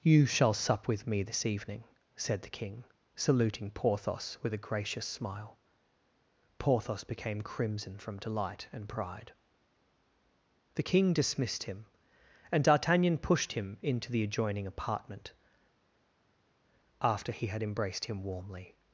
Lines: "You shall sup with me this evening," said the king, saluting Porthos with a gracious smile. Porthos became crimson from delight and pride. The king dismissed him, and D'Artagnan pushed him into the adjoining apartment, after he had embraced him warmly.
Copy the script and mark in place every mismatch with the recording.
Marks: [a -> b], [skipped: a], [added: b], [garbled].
"You shall sup with me this evening," said the king, saluting Porthos with a gracious smile. Porthos became crimson from delight and pride. The king dismissed him, and D'Artagnan pushed him into the adjoining apartment, after he had embraced him warmly.